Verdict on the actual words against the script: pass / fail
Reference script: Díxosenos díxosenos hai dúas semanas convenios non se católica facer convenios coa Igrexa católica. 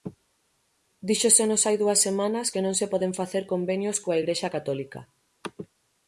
fail